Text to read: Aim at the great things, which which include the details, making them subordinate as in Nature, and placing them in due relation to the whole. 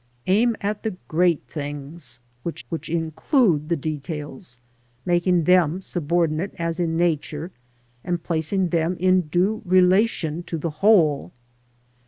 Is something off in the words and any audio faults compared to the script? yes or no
no